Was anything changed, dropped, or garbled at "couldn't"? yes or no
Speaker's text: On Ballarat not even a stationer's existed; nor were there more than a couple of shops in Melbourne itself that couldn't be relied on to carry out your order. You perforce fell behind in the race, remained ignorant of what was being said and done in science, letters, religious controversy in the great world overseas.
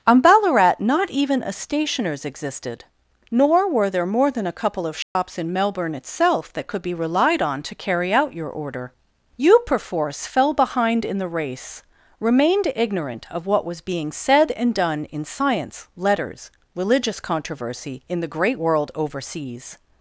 yes